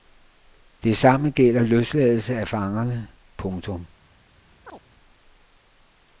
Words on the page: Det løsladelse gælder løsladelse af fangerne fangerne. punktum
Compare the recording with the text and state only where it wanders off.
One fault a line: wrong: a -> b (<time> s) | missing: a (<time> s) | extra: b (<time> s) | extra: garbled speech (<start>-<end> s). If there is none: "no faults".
wrong: løsladelse -> samme (1.0 s)
missing: fangerne (3.1 s)